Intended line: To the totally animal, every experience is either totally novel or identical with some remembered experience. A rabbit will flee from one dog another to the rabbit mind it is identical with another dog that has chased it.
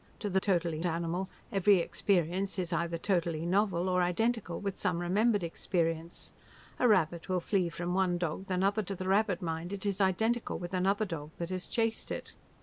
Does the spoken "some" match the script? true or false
true